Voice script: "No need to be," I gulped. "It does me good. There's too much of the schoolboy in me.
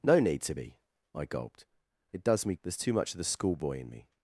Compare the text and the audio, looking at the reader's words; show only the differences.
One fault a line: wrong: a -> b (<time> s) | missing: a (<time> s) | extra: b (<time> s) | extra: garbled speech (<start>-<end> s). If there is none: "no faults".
missing: good (2.5 s)